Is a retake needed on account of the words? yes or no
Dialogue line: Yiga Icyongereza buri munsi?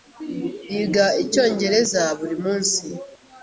no